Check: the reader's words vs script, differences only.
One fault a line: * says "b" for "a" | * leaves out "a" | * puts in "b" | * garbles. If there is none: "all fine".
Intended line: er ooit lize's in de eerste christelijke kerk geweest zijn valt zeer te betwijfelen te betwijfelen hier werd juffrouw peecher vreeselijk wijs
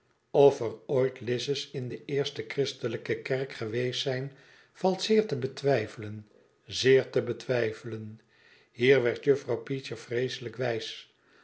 * puts in "zeer"